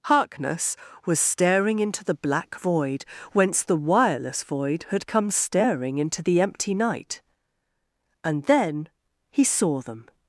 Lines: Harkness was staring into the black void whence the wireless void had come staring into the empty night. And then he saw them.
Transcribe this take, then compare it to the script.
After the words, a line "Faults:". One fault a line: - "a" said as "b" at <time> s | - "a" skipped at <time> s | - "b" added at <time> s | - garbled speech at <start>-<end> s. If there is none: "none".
Harkness was staring into the black void whence the wireless void had come staring into the empty night. And then he saw them.
Faults:
none